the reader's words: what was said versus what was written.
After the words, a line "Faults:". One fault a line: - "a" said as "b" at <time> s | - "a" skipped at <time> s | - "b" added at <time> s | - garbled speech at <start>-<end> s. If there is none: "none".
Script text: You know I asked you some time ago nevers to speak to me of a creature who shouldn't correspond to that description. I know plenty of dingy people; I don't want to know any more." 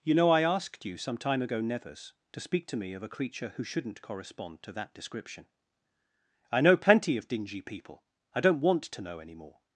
You know I asked you some time ago nevers to speak to me of a creature who shouldn't correspond to that description. I know plenty of dingy people; I don't want to know any more."
Faults:
none